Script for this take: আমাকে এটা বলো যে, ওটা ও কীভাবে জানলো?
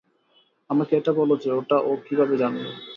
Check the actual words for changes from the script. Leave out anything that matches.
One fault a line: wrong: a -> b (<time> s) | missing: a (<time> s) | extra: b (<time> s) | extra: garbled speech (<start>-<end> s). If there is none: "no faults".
no faults